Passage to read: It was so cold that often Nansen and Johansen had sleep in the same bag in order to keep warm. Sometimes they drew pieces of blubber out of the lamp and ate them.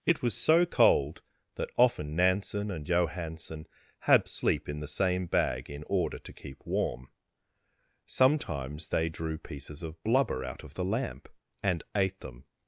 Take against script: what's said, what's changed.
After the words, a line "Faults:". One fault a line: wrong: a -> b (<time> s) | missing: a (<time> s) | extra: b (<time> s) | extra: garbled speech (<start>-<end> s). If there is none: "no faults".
It was so cold that often Nansen and Johansen had sleep in the same bag in order to keep warm. Sometimes they drew pieces of blubber out of the lamp and ate them.
Faults:
no faults